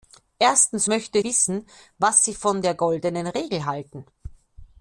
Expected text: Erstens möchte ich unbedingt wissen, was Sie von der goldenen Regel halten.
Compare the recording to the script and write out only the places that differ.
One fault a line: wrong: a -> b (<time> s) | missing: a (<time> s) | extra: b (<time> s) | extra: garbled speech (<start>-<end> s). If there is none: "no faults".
missing: ich unbedingt (1.2 s)